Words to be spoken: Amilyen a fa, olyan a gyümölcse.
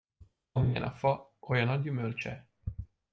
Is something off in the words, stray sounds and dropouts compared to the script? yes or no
no